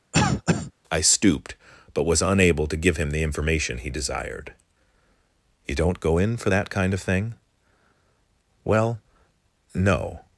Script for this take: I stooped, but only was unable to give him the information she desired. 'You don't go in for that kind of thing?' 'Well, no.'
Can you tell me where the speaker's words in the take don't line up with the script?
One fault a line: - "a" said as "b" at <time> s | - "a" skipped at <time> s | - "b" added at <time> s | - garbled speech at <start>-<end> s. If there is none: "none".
- "only" skipped at 2.1 s
- "she" said as "he" at 3.8 s